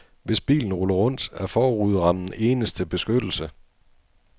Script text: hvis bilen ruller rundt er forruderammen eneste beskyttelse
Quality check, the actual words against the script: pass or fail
pass